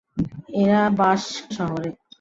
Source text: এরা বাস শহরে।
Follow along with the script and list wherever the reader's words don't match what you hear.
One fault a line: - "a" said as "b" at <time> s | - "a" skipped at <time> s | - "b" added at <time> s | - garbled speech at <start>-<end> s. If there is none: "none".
none